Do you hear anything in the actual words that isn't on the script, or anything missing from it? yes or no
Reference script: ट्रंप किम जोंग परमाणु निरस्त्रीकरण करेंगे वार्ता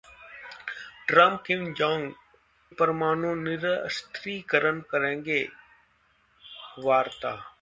no